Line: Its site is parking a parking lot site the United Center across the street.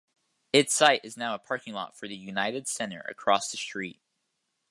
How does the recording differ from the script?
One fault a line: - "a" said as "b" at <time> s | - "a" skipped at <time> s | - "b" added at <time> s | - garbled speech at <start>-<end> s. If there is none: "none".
- "parking" said as "now" at 1.1 s
- "site" said as "for" at 1.9 s